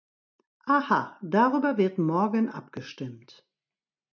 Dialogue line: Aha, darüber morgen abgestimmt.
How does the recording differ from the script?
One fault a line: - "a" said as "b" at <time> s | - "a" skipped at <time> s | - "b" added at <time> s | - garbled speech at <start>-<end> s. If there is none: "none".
- "wird" added at 1.8 s